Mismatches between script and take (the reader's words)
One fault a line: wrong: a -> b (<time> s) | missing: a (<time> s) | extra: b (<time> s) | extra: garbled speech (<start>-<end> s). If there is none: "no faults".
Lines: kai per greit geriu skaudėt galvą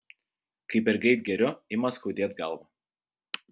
extra: ima (1.8 s)